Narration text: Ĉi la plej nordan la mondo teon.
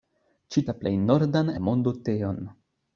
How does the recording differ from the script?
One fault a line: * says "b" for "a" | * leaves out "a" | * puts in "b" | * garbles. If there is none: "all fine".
all fine